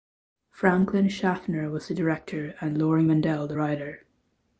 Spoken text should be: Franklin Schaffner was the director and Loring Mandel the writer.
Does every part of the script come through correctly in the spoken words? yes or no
yes